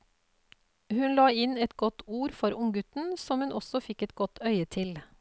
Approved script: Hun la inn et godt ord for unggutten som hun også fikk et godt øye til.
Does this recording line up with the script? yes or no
yes